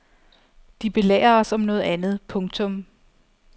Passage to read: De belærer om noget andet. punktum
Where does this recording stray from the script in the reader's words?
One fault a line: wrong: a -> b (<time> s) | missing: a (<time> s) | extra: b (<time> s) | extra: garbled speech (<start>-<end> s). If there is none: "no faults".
extra: os (1.4 s)